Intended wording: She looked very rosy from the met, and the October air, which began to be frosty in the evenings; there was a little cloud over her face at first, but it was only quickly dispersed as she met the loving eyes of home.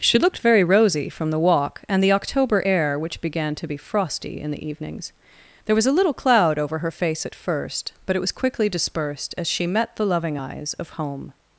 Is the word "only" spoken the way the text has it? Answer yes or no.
no